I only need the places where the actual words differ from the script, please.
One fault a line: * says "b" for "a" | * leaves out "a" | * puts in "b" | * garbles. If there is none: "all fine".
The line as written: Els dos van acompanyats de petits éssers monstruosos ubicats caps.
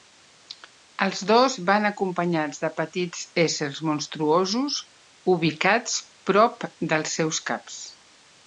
* puts in "prop dels seus"